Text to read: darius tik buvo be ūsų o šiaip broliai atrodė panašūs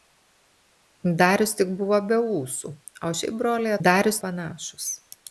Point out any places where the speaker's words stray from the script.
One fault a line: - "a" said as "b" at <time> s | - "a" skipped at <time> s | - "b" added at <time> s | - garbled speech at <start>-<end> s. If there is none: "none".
- "atrodė" said as "darius" at 3.8 s